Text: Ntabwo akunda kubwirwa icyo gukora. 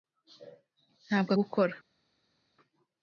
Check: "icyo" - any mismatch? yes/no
yes